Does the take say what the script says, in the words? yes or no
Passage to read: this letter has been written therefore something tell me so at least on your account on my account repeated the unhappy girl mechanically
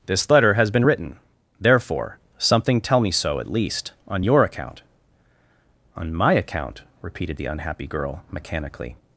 yes